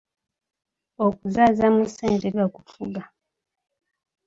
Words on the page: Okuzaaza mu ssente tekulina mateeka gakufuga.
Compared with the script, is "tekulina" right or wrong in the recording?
wrong